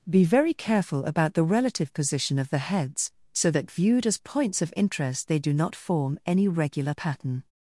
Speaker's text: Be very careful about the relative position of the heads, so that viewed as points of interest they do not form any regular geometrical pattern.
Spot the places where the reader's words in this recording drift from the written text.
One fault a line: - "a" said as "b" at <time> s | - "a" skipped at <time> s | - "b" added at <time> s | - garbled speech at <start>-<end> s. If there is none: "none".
- "geometrical" skipped at 6.9 s